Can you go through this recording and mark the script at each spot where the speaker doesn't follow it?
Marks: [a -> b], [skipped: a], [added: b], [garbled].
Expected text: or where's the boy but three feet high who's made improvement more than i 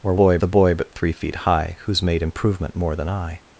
or [where's -> boy] the boy but three feet high who's made improvement more than i